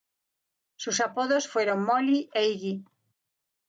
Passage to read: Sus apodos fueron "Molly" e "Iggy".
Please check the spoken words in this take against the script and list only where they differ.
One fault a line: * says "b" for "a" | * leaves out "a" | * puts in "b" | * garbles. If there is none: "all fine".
all fine